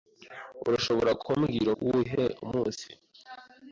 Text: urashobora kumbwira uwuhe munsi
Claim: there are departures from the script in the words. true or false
false